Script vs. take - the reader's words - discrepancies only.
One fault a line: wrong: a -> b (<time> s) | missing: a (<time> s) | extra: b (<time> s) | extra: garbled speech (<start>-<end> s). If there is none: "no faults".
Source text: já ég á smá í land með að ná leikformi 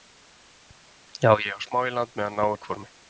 no faults